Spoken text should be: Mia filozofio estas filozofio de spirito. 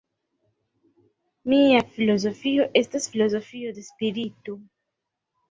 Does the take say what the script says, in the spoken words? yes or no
yes